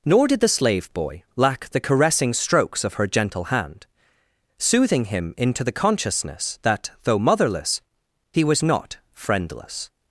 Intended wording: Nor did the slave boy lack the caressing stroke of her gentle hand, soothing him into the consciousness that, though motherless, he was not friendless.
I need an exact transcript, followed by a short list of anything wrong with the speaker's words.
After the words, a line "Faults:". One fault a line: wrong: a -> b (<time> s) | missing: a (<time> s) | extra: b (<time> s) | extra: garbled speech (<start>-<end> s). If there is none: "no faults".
Nor did the slave boy lack the caressing strokes of her gentle hand, soothing him into the consciousness that, though motherless, he was not friendless.
Faults:
wrong: stroke -> strokes (2.3 s)